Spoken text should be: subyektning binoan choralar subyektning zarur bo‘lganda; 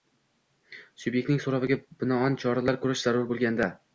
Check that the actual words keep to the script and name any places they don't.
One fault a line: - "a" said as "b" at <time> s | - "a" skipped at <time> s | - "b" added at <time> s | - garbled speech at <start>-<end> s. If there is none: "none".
- "so‘roviga" added at 1.4 s
- "subyektning" said as "ko‘rish" at 2.8 s